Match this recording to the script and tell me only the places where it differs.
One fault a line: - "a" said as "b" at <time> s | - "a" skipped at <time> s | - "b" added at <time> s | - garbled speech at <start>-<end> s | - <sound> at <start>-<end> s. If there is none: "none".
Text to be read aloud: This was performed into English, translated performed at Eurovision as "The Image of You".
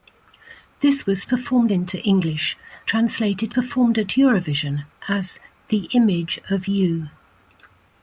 none